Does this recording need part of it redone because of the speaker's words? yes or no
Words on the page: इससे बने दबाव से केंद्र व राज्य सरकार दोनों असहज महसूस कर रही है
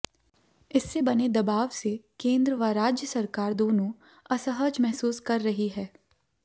no